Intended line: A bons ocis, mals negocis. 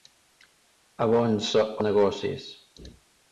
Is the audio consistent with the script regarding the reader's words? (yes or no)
no